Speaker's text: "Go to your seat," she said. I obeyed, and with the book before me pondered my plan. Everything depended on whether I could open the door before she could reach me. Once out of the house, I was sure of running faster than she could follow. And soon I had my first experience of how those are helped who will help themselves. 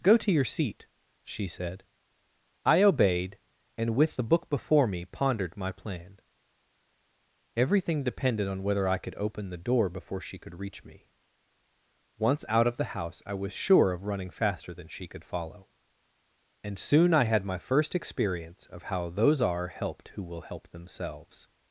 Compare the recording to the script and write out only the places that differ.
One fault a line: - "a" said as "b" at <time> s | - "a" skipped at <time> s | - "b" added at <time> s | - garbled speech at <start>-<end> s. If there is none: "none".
none